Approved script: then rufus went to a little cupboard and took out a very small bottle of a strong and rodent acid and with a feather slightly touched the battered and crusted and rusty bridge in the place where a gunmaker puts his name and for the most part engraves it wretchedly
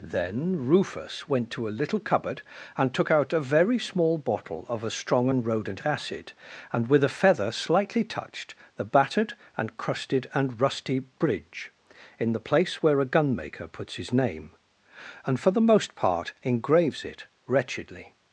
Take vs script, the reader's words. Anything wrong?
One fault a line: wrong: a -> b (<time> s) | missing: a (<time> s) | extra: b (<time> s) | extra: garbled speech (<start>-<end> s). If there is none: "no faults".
no faults